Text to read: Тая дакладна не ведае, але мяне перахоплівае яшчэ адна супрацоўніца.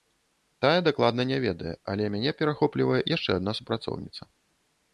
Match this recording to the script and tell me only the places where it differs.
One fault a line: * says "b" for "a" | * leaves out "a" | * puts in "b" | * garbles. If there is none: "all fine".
all fine